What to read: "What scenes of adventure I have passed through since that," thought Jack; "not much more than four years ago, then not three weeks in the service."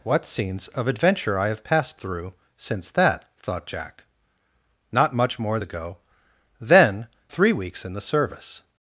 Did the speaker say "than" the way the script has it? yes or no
no